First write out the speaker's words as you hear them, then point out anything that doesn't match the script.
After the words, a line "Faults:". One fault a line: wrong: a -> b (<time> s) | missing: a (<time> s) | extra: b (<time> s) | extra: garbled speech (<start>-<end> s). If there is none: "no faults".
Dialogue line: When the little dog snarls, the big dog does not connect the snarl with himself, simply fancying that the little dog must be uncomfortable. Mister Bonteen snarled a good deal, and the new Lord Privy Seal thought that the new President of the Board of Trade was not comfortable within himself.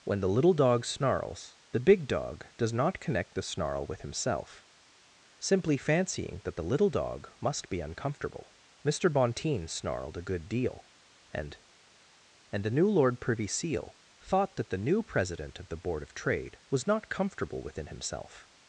When the little dog snarls, the big dog does not connect the snarl with himself, simply fancying that the little dog must be uncomfortable. Mister Bonteen snarled a good deal, and and the new Lord Privy Seal thought that the new President of the Board of Trade was not comfortable within himself.
Faults:
extra: and (12.5 s)